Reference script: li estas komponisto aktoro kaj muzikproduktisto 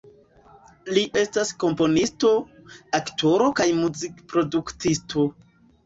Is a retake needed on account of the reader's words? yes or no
no